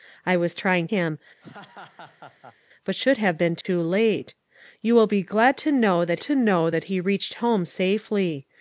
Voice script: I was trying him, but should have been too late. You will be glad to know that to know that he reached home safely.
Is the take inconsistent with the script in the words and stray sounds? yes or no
yes